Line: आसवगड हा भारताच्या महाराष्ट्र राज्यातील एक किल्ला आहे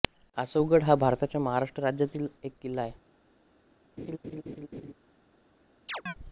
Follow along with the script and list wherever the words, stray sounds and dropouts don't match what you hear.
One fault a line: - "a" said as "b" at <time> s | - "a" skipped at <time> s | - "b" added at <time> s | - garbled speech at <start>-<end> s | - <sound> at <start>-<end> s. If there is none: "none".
- laugh at 4.0-4.9 s
- chirp at 5.9-6.1 s